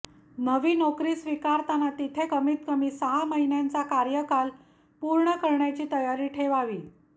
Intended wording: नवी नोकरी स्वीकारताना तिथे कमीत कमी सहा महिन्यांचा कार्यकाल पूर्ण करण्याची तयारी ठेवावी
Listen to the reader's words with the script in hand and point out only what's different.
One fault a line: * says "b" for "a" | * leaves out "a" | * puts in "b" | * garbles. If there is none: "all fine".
all fine